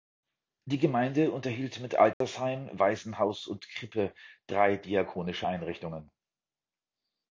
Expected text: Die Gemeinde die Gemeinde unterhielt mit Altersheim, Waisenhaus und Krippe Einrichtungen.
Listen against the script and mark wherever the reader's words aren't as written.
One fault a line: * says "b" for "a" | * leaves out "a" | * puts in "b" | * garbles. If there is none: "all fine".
* leaves out "die Gemeinde"
* puts in "drei diakonische"